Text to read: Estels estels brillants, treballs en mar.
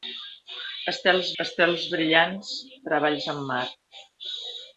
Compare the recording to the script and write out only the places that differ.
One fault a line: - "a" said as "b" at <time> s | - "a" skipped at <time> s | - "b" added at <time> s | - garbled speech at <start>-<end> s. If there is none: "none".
none